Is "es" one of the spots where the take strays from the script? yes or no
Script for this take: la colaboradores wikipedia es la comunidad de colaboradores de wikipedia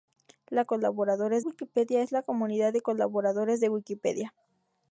no